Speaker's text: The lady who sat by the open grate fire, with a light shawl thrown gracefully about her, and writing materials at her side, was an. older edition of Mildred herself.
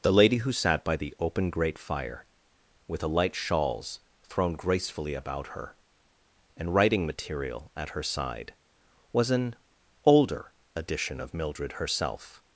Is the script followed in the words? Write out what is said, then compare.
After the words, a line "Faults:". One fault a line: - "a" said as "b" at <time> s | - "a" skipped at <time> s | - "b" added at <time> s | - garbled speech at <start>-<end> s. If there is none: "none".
The lady who sat by the open grate fire, with a light shawls thrown gracefully about her, and writing material at her side, was an. older edition of Mildred herself.
Faults:
- "shawl" said as "shawls" at 3.4 s
- "materials" said as "material" at 7.0 s